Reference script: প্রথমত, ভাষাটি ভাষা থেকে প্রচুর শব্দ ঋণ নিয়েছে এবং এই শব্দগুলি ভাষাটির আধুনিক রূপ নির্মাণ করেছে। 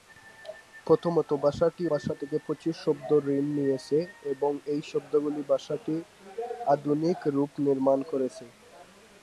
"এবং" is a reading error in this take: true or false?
false